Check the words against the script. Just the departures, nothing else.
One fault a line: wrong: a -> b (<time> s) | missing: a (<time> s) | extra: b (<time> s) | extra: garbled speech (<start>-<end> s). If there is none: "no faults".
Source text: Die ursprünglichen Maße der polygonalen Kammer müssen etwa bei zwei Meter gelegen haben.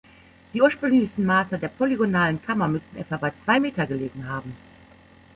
no faults